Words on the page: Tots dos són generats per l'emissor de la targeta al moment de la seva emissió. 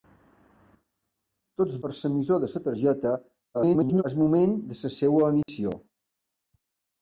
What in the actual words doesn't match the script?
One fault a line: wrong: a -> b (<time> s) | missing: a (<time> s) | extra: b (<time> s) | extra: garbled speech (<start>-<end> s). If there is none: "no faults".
missing: dos són generats (1.8 s)
extra: garbled speech (3.5-4.0 s)